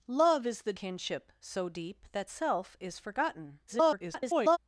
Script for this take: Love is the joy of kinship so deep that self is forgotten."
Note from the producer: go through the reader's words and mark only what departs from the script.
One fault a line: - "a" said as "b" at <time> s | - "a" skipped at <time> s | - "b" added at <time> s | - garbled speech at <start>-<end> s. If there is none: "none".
- "joy of" skipped at 0.7 s
- garbled speech at 3.7-4.6 s